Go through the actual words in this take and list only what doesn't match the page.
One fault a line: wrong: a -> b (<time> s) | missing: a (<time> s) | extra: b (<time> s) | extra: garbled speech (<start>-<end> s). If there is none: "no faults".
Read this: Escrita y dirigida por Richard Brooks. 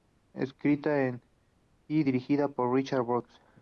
no faults